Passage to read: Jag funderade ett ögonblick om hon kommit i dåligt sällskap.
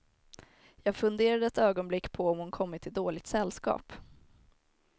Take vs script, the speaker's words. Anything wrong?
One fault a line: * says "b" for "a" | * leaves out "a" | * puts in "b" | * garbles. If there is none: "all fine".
* puts in "på"